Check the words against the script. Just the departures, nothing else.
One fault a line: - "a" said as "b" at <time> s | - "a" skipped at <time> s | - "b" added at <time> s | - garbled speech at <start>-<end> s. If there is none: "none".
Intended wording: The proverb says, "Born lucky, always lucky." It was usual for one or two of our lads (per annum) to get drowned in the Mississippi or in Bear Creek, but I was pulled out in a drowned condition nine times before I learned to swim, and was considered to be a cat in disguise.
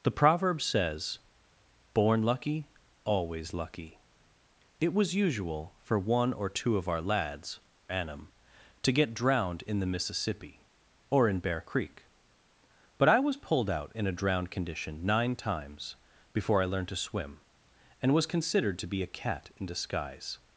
- "per" skipped at 7.6 s